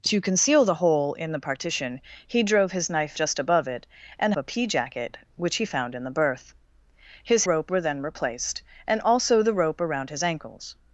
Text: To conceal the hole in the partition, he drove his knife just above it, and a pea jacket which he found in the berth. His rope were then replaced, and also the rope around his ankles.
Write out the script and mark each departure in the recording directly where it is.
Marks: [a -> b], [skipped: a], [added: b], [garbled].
To conceal the hole in the partition, he drove his knife just above it, and a pea jacket which he found in the berth. His rope were then replaced, and also the rope around his ankles.